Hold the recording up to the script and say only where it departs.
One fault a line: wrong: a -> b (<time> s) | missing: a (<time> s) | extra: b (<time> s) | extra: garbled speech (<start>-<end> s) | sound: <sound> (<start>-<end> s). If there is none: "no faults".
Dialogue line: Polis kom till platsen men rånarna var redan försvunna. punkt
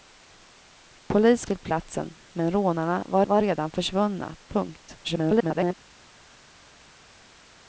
missing: kom (1.4 s)
extra: var (3.2 s)
extra: garbled speech (5.0-5.7 s)